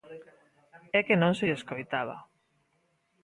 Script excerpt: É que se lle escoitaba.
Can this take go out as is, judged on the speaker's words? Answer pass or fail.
fail